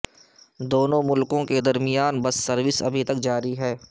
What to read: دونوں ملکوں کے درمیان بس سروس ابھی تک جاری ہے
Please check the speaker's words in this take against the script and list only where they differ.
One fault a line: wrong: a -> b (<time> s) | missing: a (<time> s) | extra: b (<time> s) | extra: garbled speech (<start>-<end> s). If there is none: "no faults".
no faults